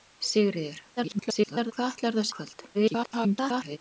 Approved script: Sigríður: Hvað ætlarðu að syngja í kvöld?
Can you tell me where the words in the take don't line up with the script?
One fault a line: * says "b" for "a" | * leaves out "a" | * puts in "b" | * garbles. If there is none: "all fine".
* garbles
* leaves out "syngja"
* garbles